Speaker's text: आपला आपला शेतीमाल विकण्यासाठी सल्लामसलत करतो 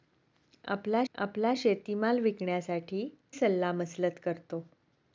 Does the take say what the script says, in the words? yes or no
yes